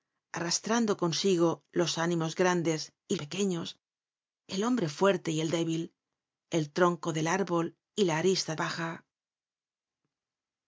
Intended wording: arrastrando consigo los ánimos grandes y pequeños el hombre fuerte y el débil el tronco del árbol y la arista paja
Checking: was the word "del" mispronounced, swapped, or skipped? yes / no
no